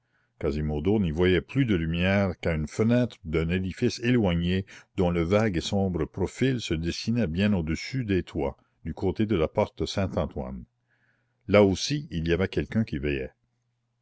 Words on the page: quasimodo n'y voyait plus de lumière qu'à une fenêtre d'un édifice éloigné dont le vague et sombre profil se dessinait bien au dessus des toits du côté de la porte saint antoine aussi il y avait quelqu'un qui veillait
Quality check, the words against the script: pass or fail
fail